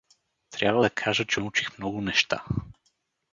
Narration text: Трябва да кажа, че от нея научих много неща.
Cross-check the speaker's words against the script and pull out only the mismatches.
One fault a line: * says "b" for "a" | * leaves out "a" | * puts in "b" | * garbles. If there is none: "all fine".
* leaves out "от нея"